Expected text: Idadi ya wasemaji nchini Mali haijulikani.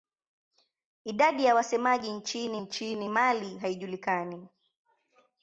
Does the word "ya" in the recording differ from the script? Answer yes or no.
no